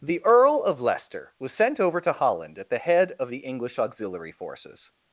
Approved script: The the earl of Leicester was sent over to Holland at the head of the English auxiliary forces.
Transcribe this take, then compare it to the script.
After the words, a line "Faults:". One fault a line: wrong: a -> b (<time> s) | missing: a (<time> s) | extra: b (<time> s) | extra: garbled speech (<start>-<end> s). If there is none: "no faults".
The earl of Leicester was sent over to Holland at the head of the English auxiliary forces.
Faults:
missing: the (0.2 s)